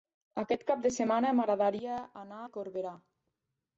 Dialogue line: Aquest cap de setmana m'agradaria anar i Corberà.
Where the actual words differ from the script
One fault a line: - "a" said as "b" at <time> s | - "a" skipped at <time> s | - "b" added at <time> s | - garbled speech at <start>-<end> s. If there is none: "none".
none